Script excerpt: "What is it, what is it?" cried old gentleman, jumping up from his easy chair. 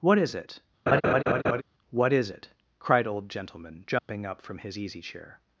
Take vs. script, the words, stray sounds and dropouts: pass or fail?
fail